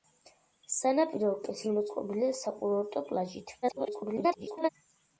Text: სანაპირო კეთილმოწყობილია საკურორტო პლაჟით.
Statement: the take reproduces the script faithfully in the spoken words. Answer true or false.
false